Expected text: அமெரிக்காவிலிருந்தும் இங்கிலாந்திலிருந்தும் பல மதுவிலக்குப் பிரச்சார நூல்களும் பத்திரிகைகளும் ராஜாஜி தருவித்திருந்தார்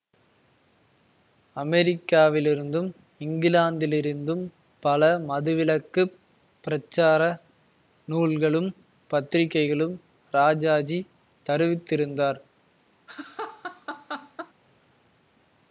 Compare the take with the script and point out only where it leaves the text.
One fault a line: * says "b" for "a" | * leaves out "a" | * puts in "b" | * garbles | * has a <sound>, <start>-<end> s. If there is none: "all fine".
* has a laugh, 13.1-14.5 s